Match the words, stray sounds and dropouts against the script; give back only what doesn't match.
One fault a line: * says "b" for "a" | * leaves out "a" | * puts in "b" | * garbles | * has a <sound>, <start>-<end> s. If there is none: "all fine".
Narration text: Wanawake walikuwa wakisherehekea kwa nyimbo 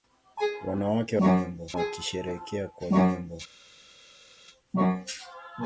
* says "nyimbo" for "walikuwa"